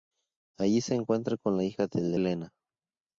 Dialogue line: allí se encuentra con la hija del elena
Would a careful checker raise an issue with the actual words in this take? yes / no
no